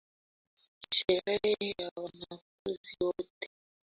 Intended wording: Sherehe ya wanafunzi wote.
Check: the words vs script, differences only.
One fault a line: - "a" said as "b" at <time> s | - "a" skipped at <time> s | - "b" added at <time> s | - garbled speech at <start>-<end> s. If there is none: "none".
none